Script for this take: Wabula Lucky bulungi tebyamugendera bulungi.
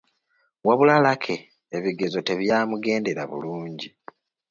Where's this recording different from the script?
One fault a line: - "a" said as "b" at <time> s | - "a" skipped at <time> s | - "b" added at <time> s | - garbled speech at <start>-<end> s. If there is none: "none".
- "bulungi" said as "ebigezo" at 1.8 s